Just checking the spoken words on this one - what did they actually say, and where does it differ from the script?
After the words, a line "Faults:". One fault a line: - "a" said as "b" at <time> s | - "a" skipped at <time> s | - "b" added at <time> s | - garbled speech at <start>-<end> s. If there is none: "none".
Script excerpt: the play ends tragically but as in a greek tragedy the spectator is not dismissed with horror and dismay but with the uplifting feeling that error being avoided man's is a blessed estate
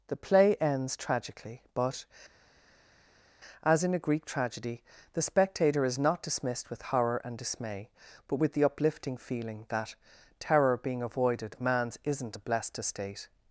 the play ends tragically but as in a greek tragedy the spectator is not dismissed with horror and dismay but with the uplifting feeling that terror being avoided man's isn't a blessed estate
Faults:
- "error" said as "terror" at 10.4 s
- "is" said as "isn't" at 12.0 s